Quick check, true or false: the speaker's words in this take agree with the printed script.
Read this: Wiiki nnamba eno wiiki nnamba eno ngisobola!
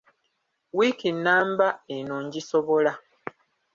false